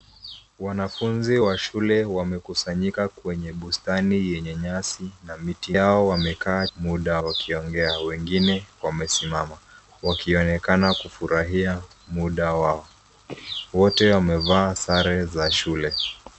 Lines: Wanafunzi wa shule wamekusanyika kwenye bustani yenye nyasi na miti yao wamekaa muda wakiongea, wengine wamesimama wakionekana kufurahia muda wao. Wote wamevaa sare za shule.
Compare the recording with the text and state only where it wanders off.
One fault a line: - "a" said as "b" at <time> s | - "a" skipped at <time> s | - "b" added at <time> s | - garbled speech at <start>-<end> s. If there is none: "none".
none